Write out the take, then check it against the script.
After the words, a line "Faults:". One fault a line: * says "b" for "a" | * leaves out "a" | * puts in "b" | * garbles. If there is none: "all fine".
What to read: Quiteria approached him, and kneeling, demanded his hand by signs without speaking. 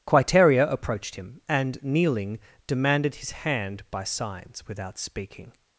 Quiteria approached him, and kneeling, demanded his hand by signs without speaking.
Faults:
all fine